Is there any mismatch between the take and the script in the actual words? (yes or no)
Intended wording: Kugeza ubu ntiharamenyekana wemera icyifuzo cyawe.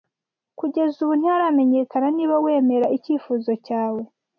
yes